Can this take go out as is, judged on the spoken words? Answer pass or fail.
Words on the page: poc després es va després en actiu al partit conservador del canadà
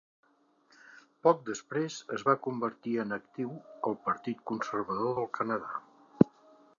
fail